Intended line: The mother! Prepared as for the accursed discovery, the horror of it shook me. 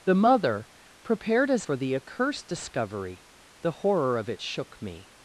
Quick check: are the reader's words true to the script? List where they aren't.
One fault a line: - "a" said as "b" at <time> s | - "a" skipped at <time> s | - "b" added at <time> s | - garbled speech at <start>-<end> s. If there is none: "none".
none